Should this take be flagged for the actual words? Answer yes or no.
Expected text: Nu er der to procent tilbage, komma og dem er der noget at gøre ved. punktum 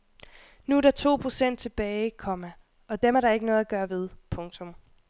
yes